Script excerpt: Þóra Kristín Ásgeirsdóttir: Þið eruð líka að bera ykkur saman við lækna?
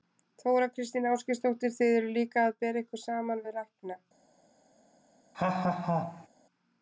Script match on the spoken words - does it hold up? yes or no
yes